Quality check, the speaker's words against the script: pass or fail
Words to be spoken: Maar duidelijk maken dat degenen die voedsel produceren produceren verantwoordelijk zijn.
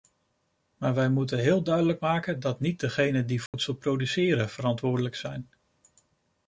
fail